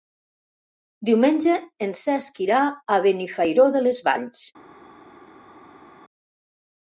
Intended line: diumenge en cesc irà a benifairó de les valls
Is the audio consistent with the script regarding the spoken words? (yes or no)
yes